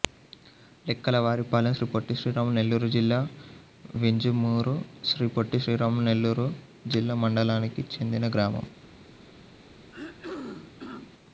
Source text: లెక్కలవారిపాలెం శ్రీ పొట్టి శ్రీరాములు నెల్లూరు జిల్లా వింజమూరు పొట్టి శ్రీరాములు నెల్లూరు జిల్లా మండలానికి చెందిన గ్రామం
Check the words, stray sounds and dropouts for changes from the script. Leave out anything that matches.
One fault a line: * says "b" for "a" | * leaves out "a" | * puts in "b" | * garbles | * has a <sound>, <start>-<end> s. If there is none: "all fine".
* puts in "శ్రీ"
* has a throat clearing, 9.9-11.1 s